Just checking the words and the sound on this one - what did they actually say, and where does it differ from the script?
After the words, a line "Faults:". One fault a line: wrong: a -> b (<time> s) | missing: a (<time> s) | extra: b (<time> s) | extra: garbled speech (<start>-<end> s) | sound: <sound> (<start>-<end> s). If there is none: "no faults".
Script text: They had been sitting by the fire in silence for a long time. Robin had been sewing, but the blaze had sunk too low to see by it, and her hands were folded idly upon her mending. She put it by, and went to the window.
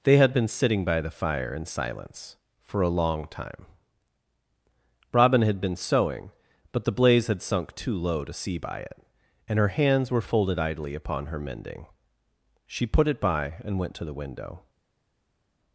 They had been sitting by the fire in silence for a long time. Robin had been sewing, but the blaze had sunk too low to see by it, and her hands were folded idly upon her mending. She put it by, and went to the window.
Faults:
no faults